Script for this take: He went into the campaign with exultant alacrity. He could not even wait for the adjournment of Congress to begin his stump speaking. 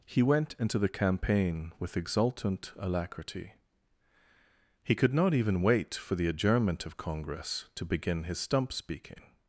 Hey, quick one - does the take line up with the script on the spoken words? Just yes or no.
yes